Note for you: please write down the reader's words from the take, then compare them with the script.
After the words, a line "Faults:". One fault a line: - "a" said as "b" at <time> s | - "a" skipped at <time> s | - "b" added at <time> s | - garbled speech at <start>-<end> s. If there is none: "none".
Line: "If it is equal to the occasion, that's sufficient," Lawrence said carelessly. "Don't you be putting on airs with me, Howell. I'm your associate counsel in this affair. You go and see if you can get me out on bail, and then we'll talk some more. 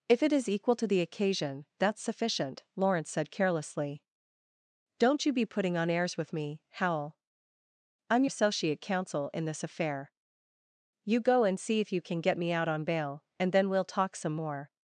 "If it is equal to the occasion, that's sufficient," Lawrence said carelessly. "Don't you be putting on airs with me, Howell. I'm associate counsel in this affair. You go and see if you can get me out on bail, and then we'll talk some more.
Faults:
- "your" skipped at 8.2 s